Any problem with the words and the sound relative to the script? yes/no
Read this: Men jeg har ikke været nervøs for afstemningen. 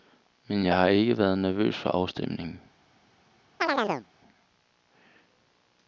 yes